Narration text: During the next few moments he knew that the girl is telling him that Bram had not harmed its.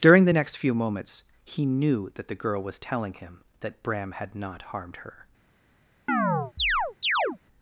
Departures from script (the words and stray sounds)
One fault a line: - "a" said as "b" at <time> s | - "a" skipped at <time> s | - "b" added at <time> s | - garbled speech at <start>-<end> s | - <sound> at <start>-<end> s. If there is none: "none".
- "is" said as "was" at 2.6 s
- "its" said as "her" at 5.0 s
- chirp at 6.1-7.4 s